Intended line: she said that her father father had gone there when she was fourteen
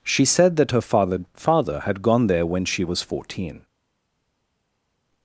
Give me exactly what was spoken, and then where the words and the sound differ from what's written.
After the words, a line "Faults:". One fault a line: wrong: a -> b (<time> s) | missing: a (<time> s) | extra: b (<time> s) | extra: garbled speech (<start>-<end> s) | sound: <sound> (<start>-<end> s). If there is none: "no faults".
she said that her father father had gone there when she was fourteen
Faults:
no faults